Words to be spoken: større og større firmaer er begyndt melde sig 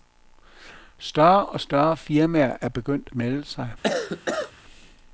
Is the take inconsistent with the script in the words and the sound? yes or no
yes